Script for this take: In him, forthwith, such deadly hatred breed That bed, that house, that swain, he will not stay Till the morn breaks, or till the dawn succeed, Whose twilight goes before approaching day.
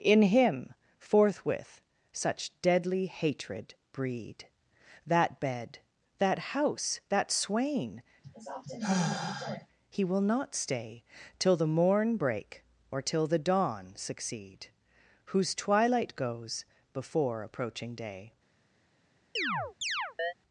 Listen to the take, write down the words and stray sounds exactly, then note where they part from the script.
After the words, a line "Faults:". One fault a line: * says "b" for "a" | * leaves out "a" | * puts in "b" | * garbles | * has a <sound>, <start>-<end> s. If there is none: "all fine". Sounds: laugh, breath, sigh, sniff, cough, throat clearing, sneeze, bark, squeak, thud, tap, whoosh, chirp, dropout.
In him, forthwith, such deadly hatred breed That bed, that house, that swain, he will not stay Till the morn break, or till the dawn succeed, Whose twilight goes before approaching day.
Faults:
* has a sigh, 8.2-9.7 s
* says "break" for "breaks"
* has a chirp, 19.4-20.3 s